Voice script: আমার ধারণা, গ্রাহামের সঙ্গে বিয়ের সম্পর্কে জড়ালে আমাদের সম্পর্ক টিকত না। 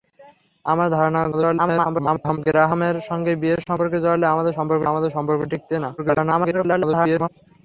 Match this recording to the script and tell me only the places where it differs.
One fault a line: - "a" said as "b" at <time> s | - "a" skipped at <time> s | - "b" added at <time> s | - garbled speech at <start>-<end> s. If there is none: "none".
- garbled speech at 1.3-2.4 s
- "আমাদের সম্পর্ক" added at 4.9 s
- garbled speech at 6.0-7.3 s